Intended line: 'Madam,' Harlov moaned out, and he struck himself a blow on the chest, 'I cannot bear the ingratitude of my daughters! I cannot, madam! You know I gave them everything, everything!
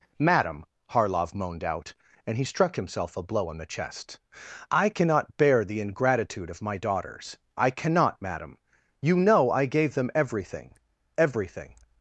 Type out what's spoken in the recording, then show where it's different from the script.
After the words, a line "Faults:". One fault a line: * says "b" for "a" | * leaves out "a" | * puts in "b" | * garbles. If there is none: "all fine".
'Madam,' Harlov moaned out, and he struck himself a blow on the chest, 'I cannot bear the ingratitude of my daughters! I cannot, madam! You know I gave them everything, everything!
Faults:
all fine